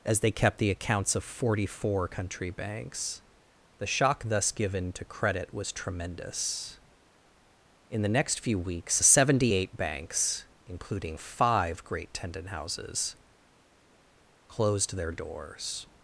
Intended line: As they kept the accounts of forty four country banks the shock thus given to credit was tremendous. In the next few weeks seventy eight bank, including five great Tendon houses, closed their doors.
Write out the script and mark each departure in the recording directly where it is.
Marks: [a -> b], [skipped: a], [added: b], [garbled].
As they kept the accounts of forty four country banks the shock thus given to credit was tremendous. In the next few weeks seventy eight [bank, -> banks] including five great Tendon houses, closed their doors.